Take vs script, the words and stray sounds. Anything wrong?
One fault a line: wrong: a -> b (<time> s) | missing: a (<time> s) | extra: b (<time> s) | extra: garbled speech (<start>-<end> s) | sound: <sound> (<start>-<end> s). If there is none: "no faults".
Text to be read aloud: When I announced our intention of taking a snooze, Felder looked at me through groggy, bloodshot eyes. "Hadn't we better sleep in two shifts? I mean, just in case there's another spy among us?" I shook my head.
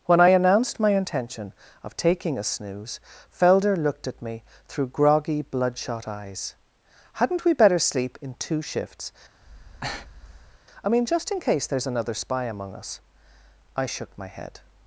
wrong: our -> my (0.8 s)
sound: breath (9.4-10.6 s)